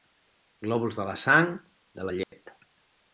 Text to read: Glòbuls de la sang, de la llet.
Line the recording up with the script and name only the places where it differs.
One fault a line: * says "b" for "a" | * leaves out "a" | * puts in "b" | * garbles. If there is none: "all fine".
all fine